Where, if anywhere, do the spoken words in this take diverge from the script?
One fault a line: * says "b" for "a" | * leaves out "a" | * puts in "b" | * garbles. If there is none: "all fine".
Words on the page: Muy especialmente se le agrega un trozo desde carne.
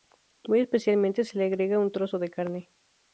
* says "de" for "desde"